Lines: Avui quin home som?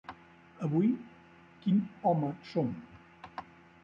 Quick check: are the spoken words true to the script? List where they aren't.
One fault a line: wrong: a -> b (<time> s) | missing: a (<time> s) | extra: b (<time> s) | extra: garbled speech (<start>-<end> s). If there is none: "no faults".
no faults